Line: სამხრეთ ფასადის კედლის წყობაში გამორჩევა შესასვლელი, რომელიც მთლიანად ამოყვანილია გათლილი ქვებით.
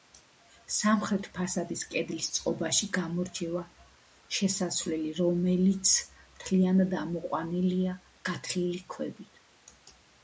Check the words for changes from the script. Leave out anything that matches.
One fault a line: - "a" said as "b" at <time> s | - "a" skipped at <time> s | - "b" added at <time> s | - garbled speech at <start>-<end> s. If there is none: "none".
none